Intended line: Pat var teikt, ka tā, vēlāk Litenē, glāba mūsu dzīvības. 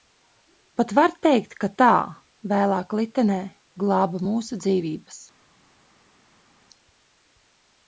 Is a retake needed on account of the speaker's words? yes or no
no